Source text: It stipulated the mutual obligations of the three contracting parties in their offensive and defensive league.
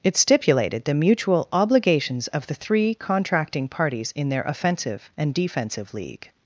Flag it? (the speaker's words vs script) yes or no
no